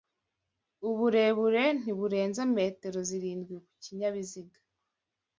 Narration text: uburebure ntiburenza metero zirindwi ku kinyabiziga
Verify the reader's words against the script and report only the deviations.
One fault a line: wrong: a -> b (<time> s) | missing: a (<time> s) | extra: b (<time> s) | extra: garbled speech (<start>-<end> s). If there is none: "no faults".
no faults